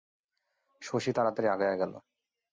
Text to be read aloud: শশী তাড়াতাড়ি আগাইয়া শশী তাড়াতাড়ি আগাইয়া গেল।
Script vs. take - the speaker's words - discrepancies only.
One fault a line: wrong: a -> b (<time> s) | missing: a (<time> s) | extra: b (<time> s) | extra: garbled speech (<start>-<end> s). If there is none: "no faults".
missing: শশী তাড়াতাড়ি আগাইয়া (1.8 s)